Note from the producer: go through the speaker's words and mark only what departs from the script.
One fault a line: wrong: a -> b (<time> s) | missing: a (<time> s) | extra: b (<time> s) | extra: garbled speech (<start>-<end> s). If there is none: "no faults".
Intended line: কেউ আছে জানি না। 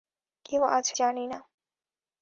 no faults